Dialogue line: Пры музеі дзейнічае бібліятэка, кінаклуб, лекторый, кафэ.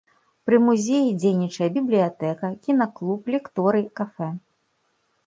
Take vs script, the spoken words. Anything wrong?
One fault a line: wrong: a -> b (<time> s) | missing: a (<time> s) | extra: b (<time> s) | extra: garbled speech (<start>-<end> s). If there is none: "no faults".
no faults